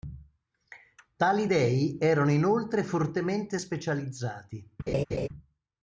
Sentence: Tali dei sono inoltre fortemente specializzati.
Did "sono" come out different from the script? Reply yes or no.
yes